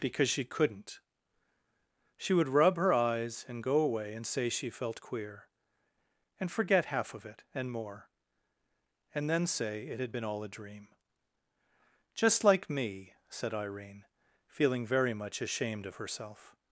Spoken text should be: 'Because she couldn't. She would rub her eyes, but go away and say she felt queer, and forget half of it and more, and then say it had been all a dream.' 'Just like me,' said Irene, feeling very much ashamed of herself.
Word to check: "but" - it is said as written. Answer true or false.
false